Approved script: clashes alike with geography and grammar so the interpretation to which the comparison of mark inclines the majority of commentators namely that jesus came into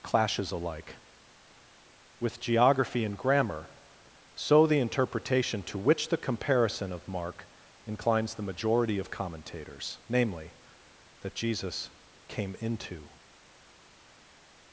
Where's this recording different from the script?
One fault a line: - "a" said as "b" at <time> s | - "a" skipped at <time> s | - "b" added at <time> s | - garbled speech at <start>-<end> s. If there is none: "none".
none